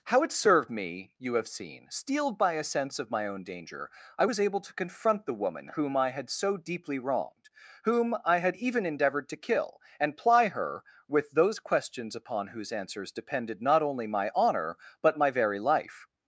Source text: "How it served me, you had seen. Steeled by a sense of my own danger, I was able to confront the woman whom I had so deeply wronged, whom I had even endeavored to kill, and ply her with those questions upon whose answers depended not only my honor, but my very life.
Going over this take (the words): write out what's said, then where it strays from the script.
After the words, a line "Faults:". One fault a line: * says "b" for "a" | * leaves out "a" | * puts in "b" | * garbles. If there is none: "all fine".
"How it served me, you have seen. Steeled by a sense of my own danger, I was able to confront the woman whom I had so deeply wronged, whom I had even endeavored to kill, and ply her with those questions upon whose answers depended not only my honor, but my very life.
Faults:
* says "have" for "had"